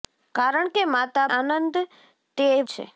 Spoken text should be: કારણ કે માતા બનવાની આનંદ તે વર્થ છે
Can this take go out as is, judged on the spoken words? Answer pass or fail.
fail